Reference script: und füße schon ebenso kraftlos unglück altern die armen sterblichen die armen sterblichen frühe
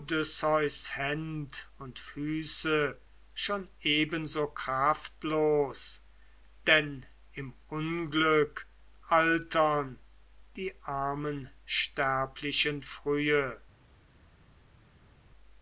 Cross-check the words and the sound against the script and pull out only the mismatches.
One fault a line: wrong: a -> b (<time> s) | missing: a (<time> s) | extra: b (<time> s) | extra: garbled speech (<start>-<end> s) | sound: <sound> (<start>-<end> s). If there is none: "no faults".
extra: denn im (6.7 s)
missing: die armen sterblichen (12.8 s)